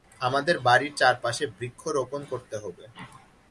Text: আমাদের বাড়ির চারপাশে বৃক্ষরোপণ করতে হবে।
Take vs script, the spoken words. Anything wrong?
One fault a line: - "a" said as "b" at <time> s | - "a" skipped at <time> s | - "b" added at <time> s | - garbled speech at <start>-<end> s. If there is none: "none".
none